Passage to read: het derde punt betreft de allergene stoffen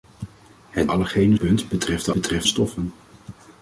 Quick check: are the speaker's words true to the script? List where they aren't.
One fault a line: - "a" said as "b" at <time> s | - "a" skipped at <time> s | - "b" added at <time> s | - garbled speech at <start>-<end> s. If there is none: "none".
- "derde" said as "allergene" at 0.9 s
- "allergene" said as "betreft" at 2.1 s